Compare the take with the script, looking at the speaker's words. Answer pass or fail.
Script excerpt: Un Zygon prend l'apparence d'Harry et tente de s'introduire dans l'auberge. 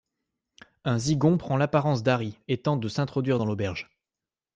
pass